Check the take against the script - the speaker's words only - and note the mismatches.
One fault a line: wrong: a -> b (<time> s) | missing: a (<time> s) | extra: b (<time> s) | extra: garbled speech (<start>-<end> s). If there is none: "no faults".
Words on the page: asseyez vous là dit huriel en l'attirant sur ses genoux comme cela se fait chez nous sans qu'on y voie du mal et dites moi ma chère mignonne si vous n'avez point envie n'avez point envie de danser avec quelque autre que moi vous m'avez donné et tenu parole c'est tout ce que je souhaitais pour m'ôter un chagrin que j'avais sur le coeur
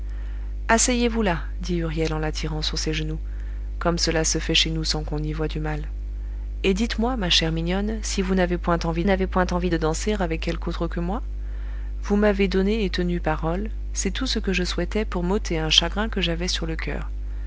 no faults